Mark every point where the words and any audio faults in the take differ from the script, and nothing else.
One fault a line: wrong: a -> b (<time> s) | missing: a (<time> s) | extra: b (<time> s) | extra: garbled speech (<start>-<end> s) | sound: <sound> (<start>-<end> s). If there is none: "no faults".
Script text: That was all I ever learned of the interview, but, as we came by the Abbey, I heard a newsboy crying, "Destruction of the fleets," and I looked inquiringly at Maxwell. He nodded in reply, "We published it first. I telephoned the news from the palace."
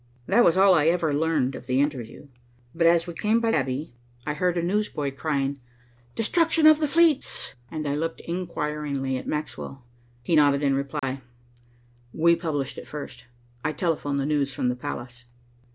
missing: the (3.5 s)
sound: dropout (11.0-11.0 s)